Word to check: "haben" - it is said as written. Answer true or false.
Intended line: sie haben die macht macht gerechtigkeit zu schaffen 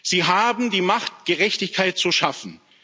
true